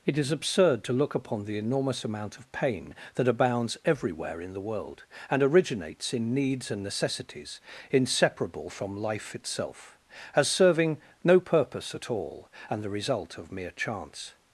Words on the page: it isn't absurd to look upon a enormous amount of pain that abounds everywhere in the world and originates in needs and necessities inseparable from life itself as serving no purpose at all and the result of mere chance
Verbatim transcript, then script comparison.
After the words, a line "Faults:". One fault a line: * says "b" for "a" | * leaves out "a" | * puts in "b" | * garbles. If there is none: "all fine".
it is absurd to look upon the enormous amount of pain that abounds everywhere in the world and originates in needs and necessities inseparable from life itself as serving no purpose at all and the result of mere chance
Faults:
* says "is" for "isn't"
* says "the" for "a"